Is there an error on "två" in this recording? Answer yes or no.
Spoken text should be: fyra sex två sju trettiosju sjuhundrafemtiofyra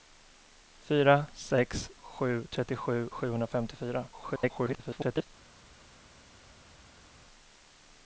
yes